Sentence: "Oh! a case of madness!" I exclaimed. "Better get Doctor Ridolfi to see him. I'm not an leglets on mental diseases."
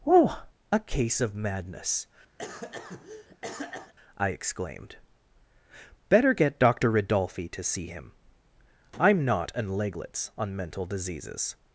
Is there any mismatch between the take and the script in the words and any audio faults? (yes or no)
yes